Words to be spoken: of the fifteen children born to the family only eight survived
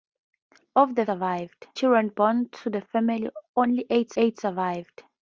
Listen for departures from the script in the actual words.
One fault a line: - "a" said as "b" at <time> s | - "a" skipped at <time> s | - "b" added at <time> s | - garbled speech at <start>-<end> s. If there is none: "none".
- "fifteen" said as "survived" at 1.0 s
- "eight" added at 4.2 s